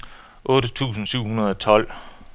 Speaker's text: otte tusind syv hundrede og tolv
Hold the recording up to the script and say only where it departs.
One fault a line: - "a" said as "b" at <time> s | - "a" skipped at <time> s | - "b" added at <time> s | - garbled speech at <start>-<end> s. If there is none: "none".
none